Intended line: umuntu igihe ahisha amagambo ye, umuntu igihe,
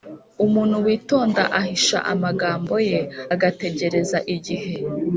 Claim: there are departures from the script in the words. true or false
true